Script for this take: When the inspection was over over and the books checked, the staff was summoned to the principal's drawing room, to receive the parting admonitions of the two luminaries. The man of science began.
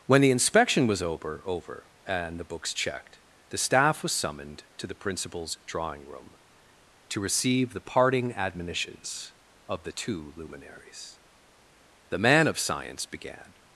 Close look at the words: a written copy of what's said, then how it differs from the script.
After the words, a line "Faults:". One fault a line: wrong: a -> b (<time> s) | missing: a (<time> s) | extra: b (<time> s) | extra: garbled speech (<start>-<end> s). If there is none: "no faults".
When the inspection was over over and the books checked, the staff was summoned to the principal's drawing room, to receive the parting admonitions of the two luminaries. The man of science began.
Faults:
no faults